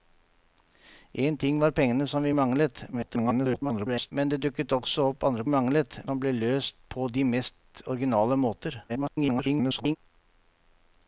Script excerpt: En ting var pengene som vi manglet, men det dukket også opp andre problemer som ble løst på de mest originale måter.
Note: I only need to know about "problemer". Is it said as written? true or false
false